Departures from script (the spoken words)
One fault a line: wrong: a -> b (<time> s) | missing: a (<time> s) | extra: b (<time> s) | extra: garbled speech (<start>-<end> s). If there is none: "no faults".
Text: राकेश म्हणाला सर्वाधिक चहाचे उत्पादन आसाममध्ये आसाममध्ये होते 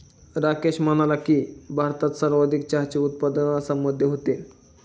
extra: की भारतात (1.2 s)
missing: आसाममध्ये (4.1 s)